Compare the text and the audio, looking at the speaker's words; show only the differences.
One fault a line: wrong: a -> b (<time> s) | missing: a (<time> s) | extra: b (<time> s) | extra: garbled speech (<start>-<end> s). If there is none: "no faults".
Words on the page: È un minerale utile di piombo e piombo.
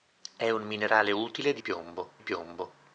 no faults